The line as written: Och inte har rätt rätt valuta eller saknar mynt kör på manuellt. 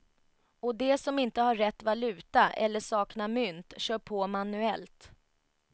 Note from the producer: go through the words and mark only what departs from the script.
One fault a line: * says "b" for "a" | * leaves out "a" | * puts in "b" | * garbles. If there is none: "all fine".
* puts in "de som"
* leaves out "rätt"